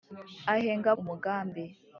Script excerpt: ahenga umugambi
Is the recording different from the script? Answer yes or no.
no